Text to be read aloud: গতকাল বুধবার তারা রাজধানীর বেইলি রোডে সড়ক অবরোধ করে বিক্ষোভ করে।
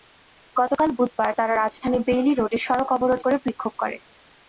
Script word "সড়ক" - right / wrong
right